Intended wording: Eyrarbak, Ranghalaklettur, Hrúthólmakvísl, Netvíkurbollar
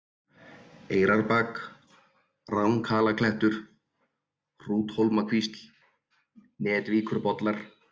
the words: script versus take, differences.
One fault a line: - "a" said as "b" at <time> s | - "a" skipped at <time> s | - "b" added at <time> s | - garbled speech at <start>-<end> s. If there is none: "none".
none